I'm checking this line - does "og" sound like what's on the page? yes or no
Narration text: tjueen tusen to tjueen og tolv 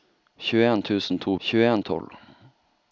yes